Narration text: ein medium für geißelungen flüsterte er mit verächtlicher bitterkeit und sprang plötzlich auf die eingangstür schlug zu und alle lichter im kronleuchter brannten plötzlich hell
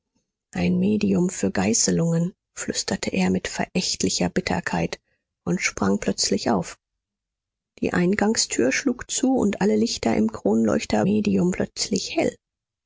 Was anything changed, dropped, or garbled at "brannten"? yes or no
yes